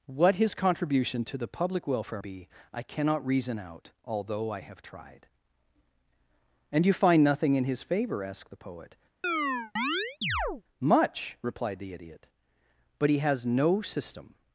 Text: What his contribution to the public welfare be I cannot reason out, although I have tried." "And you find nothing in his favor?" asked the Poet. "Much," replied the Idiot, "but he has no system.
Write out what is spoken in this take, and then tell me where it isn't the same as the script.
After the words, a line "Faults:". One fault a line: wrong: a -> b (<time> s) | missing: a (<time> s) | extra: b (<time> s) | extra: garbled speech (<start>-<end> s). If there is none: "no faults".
What his contribution to the public welfare be I cannot reason out, although I have tried." "And you find nothing in his favor?" asked the Poet. "Much," replied the Idiot, "but he has no system.
Faults:
no faults